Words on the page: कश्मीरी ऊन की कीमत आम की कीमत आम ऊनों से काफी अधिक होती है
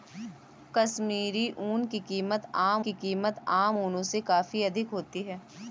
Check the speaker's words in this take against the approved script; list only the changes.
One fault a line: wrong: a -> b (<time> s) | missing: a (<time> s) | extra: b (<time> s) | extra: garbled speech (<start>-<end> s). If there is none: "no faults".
no faults